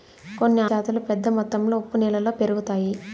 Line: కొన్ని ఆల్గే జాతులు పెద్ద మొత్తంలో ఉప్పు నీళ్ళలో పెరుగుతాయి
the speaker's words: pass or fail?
fail